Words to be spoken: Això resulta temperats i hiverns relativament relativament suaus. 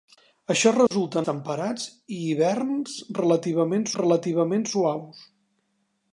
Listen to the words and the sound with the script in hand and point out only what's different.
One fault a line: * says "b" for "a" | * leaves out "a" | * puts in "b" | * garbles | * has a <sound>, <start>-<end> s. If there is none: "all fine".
* has a dropout, 0.9-0.9 s